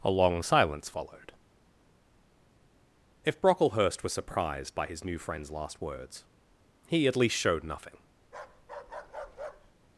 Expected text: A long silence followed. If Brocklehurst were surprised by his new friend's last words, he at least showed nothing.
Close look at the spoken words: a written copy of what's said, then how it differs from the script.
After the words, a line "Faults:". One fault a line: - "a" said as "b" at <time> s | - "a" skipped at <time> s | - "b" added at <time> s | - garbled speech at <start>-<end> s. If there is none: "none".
A long silence followed. If Brocklehurst was surprised by his new friend's last words, he at least showed nothing.
Faults:
- "were" said as "was" at 4.0 s